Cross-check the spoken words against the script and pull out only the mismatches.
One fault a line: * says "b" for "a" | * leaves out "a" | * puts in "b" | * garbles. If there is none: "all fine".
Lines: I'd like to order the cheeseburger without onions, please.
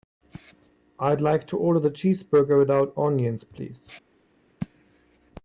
all fine